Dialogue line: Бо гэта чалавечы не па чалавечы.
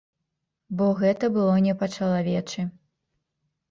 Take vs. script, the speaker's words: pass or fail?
fail